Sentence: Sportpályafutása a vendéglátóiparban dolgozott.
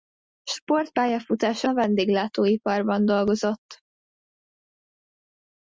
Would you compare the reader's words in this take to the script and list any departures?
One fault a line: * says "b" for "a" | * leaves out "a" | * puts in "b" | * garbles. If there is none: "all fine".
all fine